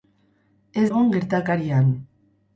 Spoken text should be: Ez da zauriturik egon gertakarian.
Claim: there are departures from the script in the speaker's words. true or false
true